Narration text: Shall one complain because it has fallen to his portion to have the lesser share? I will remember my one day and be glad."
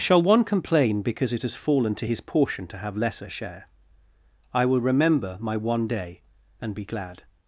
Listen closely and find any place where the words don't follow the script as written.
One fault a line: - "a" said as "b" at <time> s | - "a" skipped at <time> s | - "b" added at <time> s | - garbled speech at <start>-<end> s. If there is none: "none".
- "the" skipped at 3.0 s